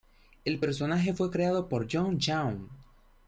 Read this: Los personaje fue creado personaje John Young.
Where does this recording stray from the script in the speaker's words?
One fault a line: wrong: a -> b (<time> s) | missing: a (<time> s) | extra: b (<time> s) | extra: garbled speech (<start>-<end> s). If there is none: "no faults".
wrong: Los -> El (0.5 s)
wrong: personaje -> por (1.7 s)